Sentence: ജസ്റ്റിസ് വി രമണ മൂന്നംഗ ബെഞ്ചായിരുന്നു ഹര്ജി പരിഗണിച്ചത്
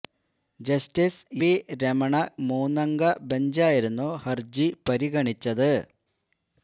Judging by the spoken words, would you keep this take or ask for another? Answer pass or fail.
pass